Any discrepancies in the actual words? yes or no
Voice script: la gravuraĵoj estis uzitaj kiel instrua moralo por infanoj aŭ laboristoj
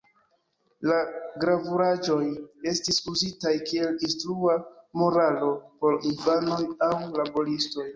no